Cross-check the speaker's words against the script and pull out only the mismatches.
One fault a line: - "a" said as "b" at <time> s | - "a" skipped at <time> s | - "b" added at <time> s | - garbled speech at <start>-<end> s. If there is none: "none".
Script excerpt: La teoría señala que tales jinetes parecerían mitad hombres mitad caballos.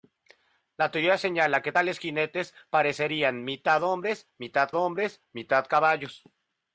- "hombres mitad" added at 4.7 s